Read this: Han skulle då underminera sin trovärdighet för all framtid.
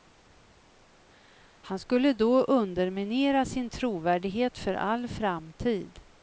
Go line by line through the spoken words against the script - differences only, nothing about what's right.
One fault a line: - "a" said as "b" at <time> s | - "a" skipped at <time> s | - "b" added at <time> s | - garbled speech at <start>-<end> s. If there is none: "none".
none